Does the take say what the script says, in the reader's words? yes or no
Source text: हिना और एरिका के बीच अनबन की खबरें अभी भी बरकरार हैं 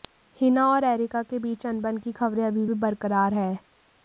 yes